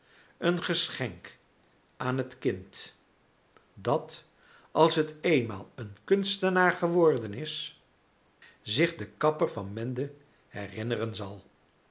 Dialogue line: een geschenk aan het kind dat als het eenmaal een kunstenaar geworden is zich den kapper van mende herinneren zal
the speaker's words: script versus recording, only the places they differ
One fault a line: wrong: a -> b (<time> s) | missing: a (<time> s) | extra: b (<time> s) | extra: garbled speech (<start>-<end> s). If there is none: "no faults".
no faults